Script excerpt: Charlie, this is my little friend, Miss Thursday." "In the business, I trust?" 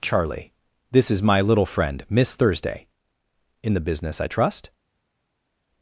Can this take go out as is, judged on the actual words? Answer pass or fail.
pass